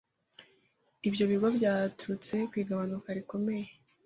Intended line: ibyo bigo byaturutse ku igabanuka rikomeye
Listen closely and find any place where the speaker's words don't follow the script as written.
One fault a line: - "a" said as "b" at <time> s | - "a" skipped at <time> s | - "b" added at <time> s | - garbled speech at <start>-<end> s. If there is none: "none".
none